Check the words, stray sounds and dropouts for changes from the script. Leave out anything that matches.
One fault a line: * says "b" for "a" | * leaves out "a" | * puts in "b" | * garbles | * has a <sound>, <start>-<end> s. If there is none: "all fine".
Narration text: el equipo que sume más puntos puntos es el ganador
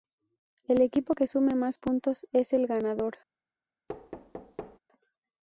* leaves out "puntos"
* has a thud, 3.9-4.8 s